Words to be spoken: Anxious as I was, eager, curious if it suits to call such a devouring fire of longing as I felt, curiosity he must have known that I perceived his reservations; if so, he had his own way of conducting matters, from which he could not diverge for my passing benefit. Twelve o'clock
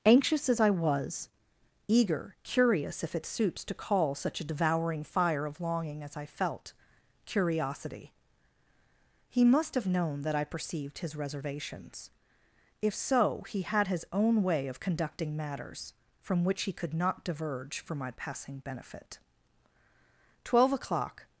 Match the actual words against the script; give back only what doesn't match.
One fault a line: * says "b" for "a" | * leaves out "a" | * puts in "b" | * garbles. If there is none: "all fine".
all fine